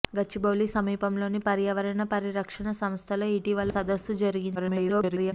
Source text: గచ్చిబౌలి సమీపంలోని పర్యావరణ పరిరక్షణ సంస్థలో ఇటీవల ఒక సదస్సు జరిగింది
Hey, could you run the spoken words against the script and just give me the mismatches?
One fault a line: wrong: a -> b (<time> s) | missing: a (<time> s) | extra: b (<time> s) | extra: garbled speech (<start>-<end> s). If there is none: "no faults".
missing: ఒక (3.7 s)
extra: garbled speech (4.6-5.3 s)